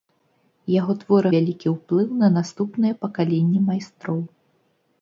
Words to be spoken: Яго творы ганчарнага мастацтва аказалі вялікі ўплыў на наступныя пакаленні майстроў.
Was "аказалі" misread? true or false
true